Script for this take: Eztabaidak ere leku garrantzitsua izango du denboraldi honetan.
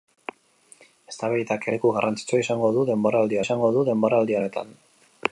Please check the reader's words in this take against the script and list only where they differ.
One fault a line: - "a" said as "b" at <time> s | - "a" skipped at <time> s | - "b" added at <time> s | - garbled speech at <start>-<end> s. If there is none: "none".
- "ere" skipped at 1.7 s
- "izango du denboraldi" added at 3.4 s